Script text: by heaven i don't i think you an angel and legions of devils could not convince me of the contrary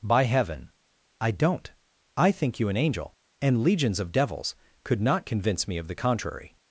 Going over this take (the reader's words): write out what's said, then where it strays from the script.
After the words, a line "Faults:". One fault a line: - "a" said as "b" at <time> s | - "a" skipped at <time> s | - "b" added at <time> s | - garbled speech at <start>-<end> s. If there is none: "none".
by heaven i don't i think you an angel and legions of devils could not convince me of the contrary
Faults:
none